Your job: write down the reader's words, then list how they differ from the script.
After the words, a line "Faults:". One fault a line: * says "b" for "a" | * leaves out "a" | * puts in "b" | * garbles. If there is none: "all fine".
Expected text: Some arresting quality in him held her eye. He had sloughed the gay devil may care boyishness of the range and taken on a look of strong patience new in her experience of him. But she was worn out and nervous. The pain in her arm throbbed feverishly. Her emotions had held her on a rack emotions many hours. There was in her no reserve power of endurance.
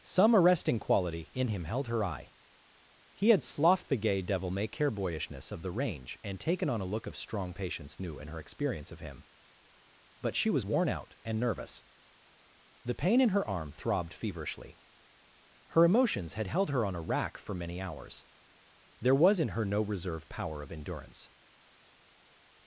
Some arresting quality in him held her eye. He had sloughed the gay devil may care boyishness of the range and taken on a look of strong patience new in her experience of him. But she was worn out and nervous. The pain in her arm throbbed feverishly. Her emotions had held her on a rack for many hours. There was in her no reserve power of endurance.
Faults:
* says "for" for "emotions"